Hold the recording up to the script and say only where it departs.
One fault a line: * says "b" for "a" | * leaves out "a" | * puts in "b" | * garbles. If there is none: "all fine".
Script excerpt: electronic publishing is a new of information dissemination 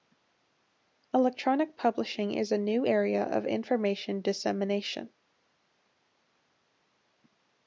* puts in "area"